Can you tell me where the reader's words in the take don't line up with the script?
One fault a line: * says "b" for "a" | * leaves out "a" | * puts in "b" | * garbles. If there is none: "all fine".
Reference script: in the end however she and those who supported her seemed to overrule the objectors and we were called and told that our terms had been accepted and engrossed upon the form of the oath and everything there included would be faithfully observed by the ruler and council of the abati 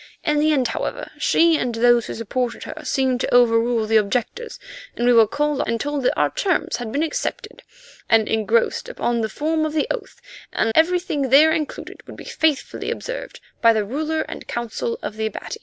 all fine